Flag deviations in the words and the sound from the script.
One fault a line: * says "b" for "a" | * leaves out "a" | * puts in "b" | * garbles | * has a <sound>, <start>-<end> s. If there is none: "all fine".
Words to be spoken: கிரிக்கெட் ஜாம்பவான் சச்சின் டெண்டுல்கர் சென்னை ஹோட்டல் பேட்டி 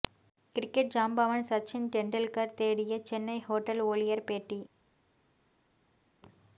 * puts in "தேடிய"
* puts in "ஊழியர்"